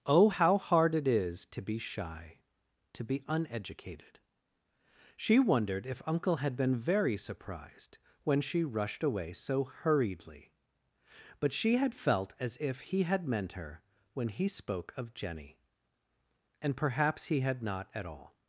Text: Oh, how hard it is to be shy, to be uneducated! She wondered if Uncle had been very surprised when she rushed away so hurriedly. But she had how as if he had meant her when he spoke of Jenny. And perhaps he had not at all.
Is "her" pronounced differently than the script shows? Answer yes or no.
no